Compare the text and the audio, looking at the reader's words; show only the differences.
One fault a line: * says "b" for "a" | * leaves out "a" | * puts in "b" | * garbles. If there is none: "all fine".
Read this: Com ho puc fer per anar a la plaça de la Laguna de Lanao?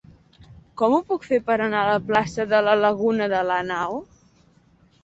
all fine